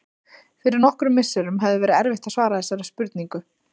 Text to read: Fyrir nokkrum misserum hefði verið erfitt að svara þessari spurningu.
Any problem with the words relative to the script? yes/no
no